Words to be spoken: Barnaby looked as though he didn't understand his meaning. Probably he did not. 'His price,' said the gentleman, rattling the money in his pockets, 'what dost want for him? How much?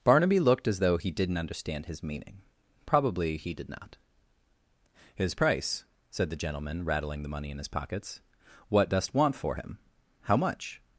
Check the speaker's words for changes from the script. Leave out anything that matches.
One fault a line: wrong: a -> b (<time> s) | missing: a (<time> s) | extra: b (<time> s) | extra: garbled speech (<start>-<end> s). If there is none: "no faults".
no faults